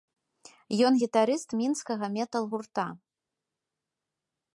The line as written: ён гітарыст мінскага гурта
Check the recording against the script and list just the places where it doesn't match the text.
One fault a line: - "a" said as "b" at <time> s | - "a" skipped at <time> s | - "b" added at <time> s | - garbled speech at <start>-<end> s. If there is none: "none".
- "метал" added at 2.2 s